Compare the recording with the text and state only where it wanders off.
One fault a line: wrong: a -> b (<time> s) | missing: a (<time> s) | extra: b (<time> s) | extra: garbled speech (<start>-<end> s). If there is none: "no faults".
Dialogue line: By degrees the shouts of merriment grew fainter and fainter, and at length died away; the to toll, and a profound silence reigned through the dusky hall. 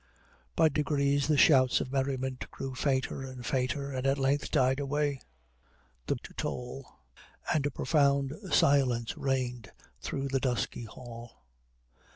no faults